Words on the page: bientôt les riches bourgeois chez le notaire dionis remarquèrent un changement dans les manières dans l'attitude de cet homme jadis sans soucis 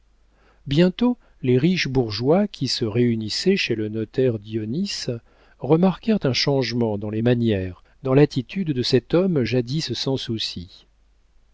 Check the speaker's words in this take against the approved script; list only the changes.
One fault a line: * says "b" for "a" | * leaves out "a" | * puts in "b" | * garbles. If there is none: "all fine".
* puts in "qui se réunissaient"